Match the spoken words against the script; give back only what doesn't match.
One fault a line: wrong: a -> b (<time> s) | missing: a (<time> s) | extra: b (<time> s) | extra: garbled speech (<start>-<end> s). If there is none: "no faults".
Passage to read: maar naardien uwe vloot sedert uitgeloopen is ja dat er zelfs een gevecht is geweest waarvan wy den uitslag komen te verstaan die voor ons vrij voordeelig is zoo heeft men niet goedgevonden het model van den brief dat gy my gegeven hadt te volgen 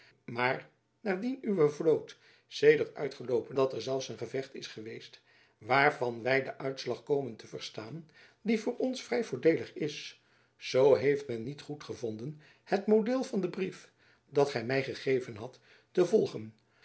missing: is ja (3.6 s)